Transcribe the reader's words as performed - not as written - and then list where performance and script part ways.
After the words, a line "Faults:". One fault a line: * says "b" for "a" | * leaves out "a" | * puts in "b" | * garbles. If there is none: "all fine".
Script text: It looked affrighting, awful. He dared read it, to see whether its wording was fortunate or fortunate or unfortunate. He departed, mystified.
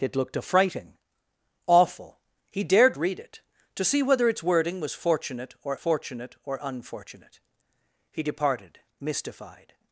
It looked affrighting, awful. He dared read it, to see whether its wording was fortunate or fortunate or unfortunate. He departed, mystified.
Faults:
all fine